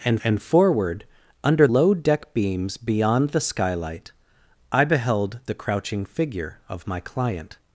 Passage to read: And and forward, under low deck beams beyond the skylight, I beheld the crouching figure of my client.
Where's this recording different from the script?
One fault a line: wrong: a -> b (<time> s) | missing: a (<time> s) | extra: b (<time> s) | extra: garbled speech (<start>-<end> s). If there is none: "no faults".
no faults